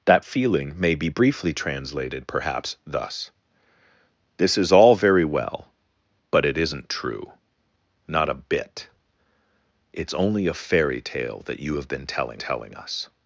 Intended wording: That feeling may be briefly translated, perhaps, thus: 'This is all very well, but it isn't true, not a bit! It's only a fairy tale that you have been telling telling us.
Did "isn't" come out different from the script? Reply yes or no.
no